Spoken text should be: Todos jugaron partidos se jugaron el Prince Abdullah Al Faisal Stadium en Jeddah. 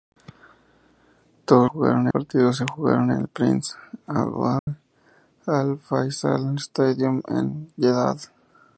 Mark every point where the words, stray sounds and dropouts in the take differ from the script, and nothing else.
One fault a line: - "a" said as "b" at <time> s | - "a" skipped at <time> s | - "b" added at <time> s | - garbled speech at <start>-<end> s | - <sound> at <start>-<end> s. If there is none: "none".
- dropout at 4.6-4.7 s